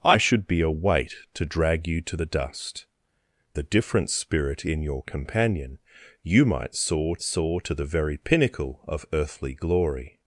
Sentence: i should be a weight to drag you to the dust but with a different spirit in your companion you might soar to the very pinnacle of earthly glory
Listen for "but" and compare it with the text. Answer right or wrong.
wrong